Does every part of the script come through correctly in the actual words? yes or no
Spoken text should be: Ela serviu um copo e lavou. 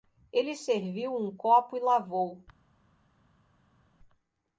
no